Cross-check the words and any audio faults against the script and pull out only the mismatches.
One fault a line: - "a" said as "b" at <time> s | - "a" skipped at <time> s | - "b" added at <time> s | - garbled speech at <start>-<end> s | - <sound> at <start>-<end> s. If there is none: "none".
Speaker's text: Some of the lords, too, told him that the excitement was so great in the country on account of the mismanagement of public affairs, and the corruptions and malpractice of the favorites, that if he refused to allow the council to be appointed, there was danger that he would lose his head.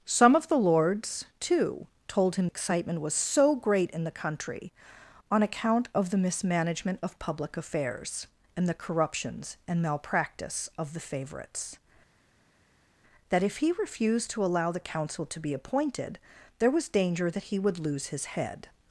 - "that the" skipped at 2.5 s